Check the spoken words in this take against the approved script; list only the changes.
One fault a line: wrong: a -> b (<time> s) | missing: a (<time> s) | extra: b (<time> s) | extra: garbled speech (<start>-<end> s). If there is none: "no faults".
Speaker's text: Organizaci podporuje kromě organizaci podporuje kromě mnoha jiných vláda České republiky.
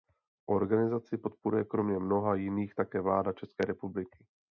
missing: organizaci podporuje kromě (2.0 s)
extra: také (2.8 s)